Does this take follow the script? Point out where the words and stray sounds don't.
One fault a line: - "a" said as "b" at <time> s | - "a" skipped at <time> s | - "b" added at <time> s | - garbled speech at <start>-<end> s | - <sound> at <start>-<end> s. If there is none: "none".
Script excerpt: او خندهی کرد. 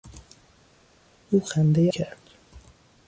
none